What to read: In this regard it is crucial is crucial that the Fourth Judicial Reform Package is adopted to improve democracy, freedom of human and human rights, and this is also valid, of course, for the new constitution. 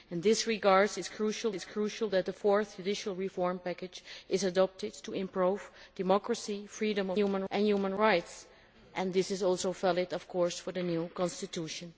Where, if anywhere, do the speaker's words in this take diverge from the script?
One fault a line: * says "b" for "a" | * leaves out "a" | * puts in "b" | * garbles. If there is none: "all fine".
all fine